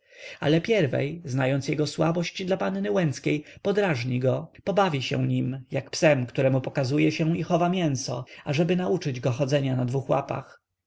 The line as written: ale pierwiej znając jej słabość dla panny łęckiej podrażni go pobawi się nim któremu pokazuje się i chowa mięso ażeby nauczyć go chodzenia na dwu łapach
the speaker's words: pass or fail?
fail